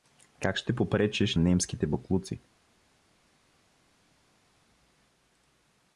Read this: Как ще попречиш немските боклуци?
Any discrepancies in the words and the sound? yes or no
no